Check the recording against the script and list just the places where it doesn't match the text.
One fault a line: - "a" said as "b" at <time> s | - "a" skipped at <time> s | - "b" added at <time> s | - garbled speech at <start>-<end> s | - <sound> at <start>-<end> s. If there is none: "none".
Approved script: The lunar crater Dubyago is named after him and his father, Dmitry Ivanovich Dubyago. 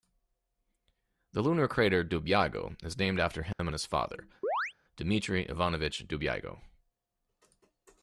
- dropout at 3.5-3.6 s
- chirp at 4.4-4.7 s